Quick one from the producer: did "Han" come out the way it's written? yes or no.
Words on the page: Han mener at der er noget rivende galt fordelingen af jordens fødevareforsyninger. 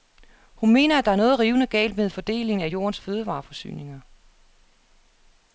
no